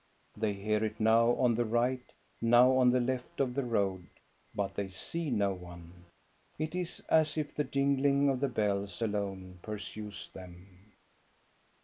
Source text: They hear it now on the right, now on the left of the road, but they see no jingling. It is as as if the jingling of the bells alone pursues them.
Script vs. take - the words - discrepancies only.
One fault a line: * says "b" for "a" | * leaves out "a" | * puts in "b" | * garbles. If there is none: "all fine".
* says "one" for "jingling"
* leaves out "as"